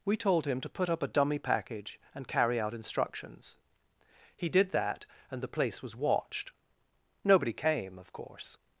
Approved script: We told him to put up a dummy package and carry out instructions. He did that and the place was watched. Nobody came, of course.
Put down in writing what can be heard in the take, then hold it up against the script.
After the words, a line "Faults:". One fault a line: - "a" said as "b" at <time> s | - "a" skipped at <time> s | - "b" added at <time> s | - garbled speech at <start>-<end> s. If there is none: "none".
We told him to put up a dummy package and carry out instructions. He did that and the place was watched. Nobody came, of course.
Faults:
none